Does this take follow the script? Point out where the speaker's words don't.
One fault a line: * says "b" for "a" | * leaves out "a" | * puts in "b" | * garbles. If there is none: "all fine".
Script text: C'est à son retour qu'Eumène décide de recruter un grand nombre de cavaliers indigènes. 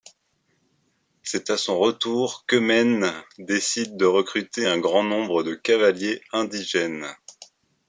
all fine